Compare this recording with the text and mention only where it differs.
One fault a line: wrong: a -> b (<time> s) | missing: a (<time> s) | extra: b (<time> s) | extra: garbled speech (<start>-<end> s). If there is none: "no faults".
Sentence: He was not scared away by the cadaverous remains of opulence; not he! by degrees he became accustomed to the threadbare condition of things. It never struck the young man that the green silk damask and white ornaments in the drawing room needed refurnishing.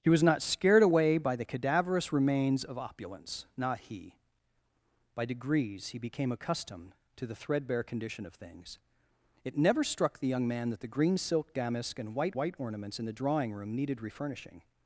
extra: white (12.3 s)